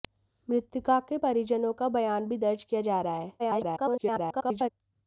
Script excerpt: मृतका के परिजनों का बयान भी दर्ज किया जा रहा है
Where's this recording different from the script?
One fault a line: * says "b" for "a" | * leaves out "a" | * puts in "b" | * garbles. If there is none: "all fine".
* garbles